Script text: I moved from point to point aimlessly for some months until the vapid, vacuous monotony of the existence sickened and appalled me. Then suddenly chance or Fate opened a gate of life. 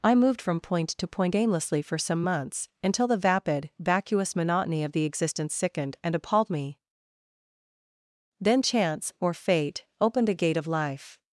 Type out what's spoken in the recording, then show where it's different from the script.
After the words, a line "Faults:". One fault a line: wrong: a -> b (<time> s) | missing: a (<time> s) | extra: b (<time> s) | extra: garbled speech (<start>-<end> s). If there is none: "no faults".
I moved from point to point aimlessly for some months until the vapid, vacuous monotony of the existence sickened and appalled me. Then chance or Fate opened a gate of life.
Faults:
missing: suddenly (8.6 s)